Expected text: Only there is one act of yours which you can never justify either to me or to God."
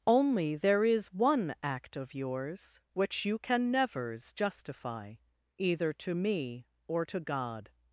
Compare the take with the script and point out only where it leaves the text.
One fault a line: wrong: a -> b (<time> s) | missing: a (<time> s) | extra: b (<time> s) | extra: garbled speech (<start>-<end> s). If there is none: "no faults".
wrong: never -> nevers (3.7 s)